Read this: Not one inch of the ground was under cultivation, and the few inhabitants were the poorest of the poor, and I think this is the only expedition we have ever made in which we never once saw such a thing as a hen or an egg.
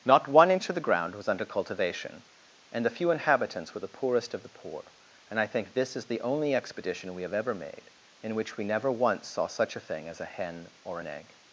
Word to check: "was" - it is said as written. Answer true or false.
true